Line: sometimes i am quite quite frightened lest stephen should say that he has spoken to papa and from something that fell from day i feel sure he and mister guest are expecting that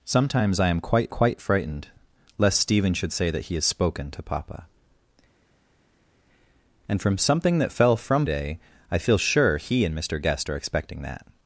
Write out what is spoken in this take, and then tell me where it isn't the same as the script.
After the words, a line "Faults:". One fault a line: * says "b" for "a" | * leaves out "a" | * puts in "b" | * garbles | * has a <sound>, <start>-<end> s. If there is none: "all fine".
sometimes i am quite quite frightened lest stephen should say that he has spoken to papa and from something that fell from day i feel sure he and mister guest are expecting that
Faults:
all fine